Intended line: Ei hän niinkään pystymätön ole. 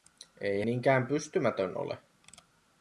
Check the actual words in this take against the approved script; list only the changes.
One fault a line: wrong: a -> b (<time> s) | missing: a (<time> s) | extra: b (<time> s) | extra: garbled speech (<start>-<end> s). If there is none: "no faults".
missing: hän (0.6 s)